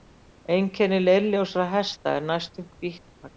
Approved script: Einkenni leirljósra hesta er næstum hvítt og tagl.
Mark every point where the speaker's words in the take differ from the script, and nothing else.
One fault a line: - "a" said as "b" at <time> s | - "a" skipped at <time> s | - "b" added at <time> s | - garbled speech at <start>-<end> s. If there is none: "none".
none